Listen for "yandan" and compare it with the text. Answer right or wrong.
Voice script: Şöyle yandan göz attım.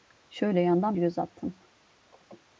right